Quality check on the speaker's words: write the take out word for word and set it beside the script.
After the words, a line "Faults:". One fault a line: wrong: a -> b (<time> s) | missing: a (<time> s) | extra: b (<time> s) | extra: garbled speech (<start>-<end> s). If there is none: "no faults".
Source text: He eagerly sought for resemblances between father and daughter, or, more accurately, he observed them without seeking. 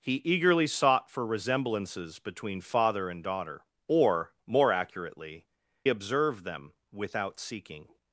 He eagerly sought for resemblances between father and daughter, or, more accurately, observed them without seeking.
Faults:
missing: he (5.5 s)